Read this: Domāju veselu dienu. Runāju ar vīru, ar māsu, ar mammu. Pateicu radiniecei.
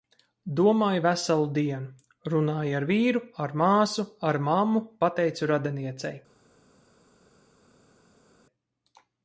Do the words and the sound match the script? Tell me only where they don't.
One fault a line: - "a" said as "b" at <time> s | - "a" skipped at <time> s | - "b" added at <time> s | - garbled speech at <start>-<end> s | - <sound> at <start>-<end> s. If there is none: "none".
none